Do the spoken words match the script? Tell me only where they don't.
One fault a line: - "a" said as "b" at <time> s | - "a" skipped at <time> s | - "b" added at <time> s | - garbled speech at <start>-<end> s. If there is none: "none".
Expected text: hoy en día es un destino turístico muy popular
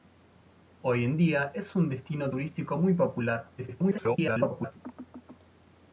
- garbled speech at 3.6-4.7 s